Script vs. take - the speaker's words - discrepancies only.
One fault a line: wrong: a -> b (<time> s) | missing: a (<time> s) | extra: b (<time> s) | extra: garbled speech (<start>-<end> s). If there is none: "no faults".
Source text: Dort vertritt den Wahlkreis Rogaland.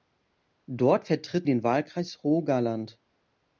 no faults